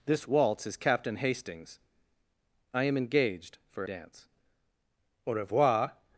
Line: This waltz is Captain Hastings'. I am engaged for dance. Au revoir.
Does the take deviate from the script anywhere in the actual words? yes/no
no